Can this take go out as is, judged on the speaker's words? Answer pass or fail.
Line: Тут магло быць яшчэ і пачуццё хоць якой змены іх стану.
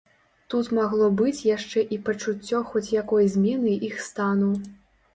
pass